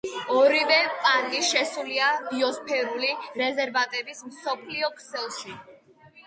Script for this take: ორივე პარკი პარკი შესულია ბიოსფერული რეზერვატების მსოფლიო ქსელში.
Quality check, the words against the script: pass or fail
fail